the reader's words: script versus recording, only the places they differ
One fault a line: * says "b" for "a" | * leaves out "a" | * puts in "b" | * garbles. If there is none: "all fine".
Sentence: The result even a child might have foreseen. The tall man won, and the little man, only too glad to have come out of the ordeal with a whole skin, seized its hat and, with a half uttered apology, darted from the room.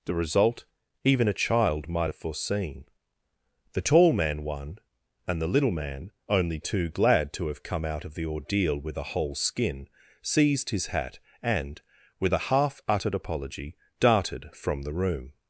* says "his" for "its"